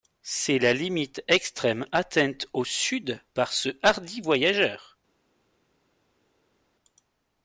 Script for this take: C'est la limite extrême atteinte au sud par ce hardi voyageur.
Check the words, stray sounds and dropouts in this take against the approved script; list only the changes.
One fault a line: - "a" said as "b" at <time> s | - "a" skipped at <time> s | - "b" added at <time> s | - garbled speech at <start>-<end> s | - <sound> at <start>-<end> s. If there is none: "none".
none